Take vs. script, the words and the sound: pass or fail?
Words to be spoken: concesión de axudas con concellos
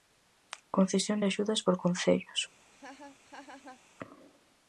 fail